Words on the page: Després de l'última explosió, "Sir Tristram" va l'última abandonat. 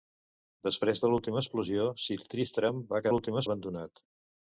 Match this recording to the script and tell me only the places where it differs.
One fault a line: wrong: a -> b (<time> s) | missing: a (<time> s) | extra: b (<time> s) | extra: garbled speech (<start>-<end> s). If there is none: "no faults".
no faults